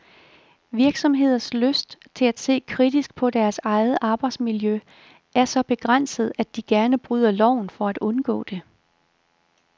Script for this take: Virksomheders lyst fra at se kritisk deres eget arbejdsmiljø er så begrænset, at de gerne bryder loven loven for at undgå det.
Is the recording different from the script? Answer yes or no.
yes